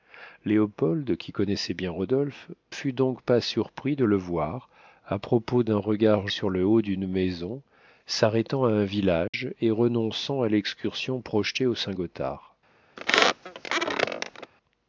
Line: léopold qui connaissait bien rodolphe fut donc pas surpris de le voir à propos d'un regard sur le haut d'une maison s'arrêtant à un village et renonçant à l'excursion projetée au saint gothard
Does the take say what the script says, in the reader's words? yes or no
yes